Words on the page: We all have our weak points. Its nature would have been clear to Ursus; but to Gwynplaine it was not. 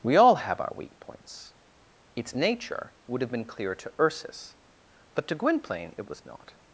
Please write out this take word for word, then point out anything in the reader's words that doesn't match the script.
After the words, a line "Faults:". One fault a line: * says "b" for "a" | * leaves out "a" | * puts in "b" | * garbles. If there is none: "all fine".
We all have our weak points. Its nature would have been clear to Ursus; but to Gwynplaine it was not.
Faults:
all fine